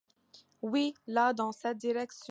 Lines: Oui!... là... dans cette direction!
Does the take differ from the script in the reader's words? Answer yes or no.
no